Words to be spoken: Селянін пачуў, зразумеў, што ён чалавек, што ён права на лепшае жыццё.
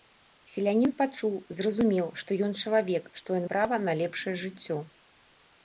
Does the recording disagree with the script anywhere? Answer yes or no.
no